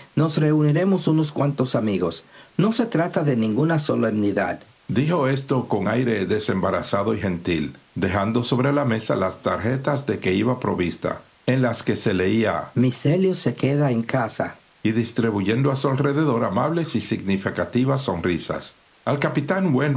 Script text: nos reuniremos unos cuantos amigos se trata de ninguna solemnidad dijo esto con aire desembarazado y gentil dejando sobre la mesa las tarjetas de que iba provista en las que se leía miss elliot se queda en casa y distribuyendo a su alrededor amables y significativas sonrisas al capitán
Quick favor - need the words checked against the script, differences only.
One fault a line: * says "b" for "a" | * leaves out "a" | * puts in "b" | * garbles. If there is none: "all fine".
* puts in "no"